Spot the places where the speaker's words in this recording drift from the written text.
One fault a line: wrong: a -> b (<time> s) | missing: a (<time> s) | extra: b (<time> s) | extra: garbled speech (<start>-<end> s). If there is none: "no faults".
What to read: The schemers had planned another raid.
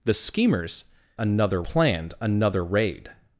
wrong: had -> another (1.2 s)